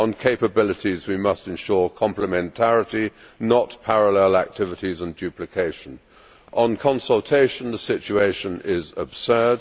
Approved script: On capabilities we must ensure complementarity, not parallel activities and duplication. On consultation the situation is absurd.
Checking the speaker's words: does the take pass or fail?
pass